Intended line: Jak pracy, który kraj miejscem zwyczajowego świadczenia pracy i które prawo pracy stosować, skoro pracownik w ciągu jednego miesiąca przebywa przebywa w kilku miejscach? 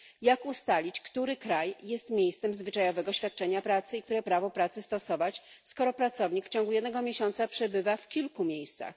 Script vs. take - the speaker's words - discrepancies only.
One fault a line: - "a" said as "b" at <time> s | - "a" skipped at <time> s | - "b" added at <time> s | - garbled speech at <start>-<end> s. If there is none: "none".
- "pracy" said as "ustalić" at 0.5 s
- "jest" added at 1.8 s
- "przebywa" skipped at 8.0 s